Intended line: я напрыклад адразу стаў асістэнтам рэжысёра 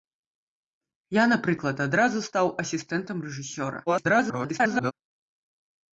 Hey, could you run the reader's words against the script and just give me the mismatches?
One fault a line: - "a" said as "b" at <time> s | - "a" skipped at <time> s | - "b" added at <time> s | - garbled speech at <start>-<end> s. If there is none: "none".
- garbled speech at 3.9-4.9 s